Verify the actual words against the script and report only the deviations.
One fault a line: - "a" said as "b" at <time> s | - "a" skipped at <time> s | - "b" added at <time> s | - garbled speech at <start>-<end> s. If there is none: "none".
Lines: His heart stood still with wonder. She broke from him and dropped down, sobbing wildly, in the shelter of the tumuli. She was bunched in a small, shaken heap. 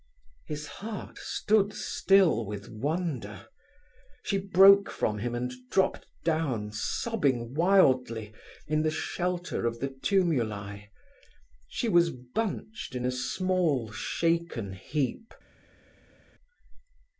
none